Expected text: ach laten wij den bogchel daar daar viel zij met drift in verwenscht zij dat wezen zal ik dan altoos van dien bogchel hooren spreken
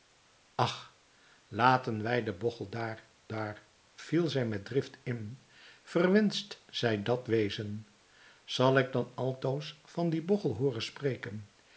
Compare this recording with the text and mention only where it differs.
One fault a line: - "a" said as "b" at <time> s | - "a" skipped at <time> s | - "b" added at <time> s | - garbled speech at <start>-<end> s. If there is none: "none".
none